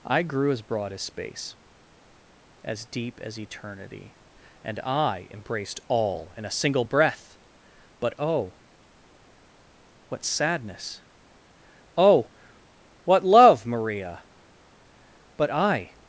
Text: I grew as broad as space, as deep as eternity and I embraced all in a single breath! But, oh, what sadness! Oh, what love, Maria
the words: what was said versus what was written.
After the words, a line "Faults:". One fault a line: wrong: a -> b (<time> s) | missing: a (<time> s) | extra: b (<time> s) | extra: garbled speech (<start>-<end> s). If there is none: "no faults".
I grew as broad as space, as deep as eternity and I embraced all in a single breath! But, oh, what sadness! Oh, what love, Maria But I
Faults:
extra: But I (15.4 s)